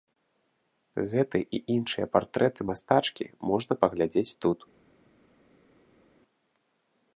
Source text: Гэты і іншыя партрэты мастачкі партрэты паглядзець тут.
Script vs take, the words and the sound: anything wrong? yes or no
yes